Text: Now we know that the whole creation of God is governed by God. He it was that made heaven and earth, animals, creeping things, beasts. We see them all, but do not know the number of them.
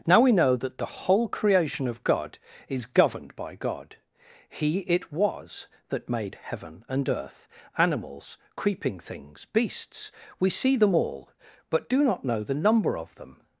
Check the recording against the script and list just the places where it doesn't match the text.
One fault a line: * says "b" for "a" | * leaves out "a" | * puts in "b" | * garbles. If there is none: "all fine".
all fine